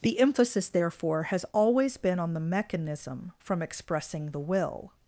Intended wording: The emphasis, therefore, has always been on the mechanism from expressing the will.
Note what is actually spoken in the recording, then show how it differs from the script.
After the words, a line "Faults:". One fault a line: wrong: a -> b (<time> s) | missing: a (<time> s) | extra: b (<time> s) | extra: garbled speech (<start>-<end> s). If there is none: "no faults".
The emphasis, therefore, has always been on the mechanism from expressing the will.
Faults:
no faults